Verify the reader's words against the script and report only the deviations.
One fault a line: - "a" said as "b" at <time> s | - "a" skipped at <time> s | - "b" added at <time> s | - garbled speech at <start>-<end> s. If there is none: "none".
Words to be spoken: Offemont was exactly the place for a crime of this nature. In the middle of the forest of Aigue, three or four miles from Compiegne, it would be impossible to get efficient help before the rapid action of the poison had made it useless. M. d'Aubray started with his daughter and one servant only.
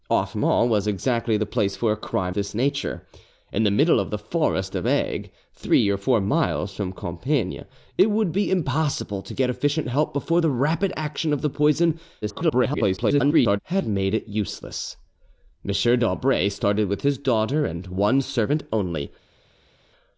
- "of" skipped at 2.4 s
- garbled speech at 12.2-13.6 s